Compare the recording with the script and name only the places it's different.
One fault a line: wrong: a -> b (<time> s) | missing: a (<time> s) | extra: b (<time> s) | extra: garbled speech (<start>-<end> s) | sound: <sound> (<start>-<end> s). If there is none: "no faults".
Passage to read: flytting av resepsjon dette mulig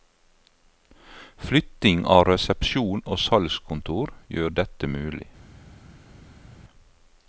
extra: og salgskontor gjør (3.0 s)